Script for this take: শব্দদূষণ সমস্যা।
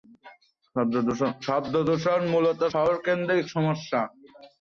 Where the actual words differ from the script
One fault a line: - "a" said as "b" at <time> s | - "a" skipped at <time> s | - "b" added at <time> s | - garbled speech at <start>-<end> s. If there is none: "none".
- "মূলত শহরকেন্দ্রিক" added at 2.3 s